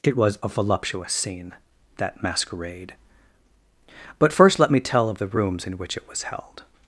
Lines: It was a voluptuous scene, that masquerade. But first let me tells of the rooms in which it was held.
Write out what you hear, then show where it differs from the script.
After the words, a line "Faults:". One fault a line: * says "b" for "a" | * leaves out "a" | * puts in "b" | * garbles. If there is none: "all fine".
It was a voluptuous scene, that masquerade. But first let me tell of the rooms in which it was held.
Faults:
* says "tell" for "tells"